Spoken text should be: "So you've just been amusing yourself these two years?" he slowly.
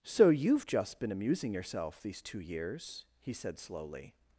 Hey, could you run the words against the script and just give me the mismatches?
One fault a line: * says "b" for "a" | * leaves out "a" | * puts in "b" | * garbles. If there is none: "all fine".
* puts in "said"